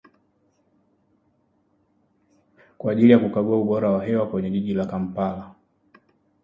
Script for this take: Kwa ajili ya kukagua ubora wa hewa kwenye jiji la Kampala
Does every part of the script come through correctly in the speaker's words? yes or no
yes